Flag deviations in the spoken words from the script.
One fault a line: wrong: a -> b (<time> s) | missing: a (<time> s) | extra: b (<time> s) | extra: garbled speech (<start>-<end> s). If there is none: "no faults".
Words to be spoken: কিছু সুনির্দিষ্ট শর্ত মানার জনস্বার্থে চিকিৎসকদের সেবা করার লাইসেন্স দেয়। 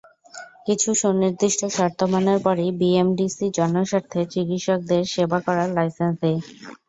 extra: পরই বিএমডিসি (2.4 s)